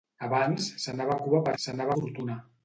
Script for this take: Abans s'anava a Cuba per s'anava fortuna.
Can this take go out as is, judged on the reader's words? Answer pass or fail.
pass